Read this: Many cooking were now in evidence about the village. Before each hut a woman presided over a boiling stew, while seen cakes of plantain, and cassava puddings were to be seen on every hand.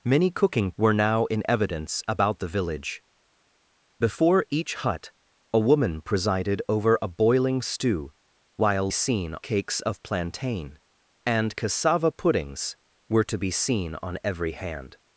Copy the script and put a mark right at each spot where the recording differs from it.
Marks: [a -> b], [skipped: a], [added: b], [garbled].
Many cooking were now in evidence about the village. Before each hut a woman presided over a boiling stew, while seen cakes of plantain, and cassava puddings were to be seen on every hand.